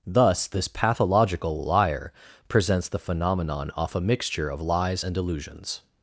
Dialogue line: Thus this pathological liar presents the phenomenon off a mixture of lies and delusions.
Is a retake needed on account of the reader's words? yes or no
no